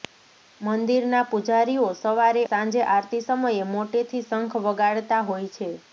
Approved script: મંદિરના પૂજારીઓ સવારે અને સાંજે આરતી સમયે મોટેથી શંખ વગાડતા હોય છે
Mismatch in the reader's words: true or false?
true